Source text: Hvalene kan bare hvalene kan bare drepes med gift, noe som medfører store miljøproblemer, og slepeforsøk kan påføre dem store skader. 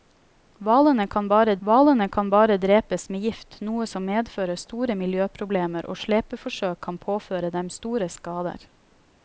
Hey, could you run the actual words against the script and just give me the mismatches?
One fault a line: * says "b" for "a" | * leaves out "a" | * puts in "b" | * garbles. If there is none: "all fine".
all fine